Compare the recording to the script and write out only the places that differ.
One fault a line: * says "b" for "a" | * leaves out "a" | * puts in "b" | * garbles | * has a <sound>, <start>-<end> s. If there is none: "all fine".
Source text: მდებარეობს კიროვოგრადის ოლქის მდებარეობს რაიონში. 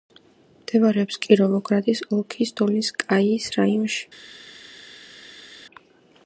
* says "დოლინსკაიის" for "მდებარეობს"